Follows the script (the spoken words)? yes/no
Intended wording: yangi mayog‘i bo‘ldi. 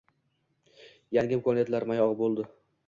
no